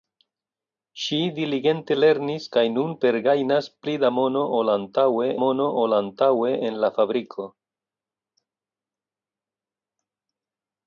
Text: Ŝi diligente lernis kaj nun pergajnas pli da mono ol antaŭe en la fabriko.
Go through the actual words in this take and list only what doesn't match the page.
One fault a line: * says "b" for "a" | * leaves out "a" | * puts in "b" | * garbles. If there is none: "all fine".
* puts in "mono ol antaŭe"